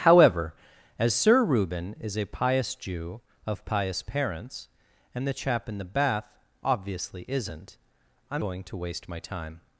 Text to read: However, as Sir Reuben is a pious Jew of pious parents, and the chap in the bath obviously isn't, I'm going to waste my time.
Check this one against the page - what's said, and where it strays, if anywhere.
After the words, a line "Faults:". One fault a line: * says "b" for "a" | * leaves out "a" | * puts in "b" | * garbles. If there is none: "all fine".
However, as Sir Reuben is a pious Jew of pious parents, and the chap in the bath obviously isn't, I'm going to waste my time.
Faults:
all fine